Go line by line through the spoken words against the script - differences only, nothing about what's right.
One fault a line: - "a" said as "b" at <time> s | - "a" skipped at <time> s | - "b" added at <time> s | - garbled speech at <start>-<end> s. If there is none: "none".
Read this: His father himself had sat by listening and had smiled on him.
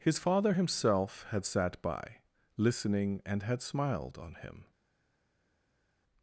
none